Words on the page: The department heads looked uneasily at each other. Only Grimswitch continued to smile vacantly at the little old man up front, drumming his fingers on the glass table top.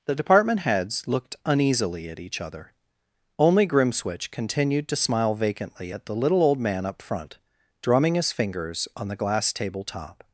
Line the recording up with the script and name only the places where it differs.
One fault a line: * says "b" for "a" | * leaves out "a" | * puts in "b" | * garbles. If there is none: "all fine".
all fine